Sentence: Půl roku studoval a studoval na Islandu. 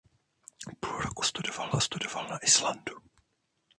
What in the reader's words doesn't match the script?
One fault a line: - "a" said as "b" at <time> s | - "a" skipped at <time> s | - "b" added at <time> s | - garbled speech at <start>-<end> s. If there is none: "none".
none